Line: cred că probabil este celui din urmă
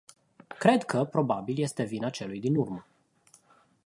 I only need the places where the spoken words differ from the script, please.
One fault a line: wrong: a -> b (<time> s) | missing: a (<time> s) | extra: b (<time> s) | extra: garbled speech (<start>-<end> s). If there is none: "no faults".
extra: vina (1.8 s)